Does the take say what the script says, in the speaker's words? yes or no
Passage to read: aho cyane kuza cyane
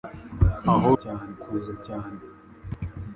yes